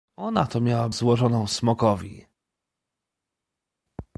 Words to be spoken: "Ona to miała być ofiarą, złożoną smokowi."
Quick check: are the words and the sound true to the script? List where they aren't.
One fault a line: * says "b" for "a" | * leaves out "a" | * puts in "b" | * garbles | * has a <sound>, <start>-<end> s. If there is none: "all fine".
* leaves out "być ofiarą"